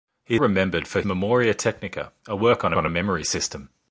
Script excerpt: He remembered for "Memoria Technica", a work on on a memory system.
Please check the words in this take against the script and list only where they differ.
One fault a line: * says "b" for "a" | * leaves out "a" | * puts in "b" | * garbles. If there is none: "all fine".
all fine